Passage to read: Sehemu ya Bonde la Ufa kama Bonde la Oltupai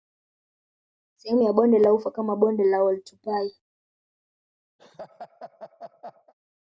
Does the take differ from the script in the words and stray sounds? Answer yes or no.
yes